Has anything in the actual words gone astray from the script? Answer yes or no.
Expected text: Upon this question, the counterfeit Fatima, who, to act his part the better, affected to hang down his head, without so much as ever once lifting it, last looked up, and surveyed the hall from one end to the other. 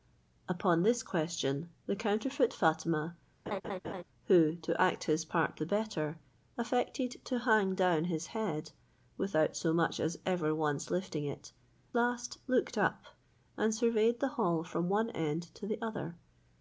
no